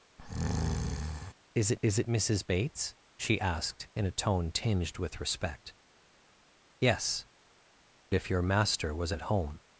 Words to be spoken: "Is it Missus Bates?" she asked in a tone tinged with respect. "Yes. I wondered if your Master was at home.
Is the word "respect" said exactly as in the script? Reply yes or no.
yes